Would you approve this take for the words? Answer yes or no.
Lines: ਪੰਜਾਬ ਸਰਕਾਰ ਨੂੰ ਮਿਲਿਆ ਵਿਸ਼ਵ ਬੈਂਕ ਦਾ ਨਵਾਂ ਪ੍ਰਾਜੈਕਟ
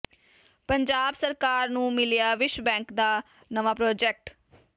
yes